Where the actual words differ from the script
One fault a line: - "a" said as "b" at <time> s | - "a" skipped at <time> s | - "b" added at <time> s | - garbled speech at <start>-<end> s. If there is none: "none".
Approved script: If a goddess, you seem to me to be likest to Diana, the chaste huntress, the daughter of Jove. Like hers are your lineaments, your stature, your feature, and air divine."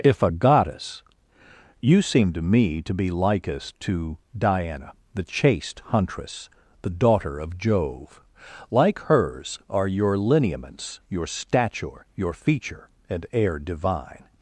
none